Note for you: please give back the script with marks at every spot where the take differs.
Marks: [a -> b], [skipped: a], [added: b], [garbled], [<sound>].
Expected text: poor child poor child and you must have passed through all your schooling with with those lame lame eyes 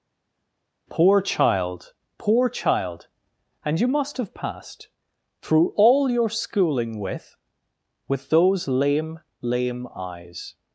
poor child poor child and you must have passed through all your schooling with with those lame lame eyes